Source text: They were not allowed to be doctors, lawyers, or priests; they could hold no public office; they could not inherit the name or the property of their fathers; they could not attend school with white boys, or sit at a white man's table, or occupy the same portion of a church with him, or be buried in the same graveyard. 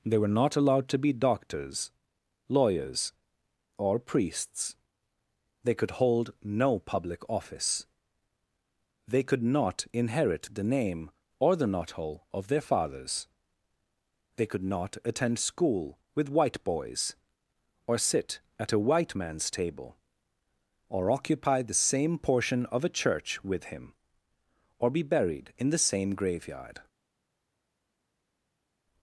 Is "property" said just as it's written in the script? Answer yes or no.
no